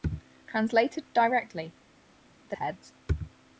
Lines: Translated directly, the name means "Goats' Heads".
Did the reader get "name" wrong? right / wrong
wrong